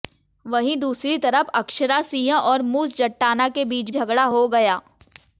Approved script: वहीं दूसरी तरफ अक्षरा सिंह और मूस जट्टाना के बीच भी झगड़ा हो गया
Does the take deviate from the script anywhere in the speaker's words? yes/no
yes